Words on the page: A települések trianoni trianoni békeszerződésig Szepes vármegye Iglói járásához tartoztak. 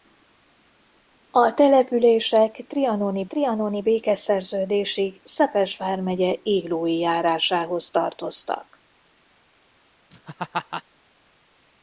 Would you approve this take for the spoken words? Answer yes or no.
yes